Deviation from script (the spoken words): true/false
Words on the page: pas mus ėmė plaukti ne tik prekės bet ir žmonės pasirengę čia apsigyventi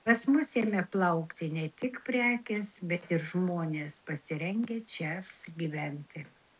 false